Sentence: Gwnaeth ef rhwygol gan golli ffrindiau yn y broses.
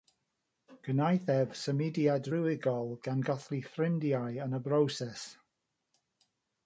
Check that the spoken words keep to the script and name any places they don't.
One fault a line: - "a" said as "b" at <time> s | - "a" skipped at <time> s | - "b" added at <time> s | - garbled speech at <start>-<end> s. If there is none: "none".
- "symudiad" added at 1.6 s